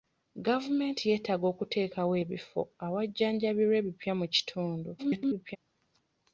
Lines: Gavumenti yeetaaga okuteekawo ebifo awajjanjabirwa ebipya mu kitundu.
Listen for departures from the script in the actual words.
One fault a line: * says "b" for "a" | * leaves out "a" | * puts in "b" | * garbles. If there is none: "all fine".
* garbles